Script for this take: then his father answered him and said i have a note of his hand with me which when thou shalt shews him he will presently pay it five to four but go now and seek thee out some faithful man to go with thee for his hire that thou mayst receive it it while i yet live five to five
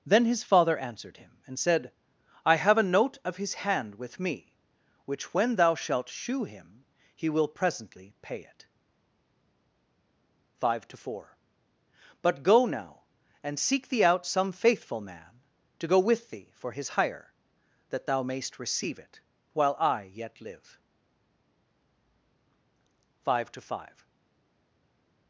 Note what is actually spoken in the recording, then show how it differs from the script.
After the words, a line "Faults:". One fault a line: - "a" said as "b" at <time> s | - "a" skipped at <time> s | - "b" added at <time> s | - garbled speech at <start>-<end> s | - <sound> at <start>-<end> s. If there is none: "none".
then his father answered him and said i have a note of his hand with me which when thou shalt shew him he will presently pay it five to four but go now and seek thee out some faithful man to go with thee for his hire that thou mayst receive it while i yet live five to five
Faults:
- "shews" said as "shew" at 6.1 s
- "it" skipped at 19.2 s